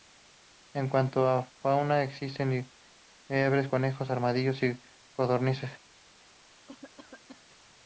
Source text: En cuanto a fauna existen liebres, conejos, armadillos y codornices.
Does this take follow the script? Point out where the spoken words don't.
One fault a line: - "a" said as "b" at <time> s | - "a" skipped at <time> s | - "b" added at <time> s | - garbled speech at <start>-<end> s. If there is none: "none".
none